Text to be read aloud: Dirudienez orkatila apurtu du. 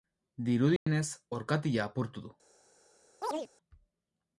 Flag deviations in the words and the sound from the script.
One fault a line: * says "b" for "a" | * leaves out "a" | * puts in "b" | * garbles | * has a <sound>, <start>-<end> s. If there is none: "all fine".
* has a dropout, 0.8-0.9 s
* has a chirp, 3.2-3.5 s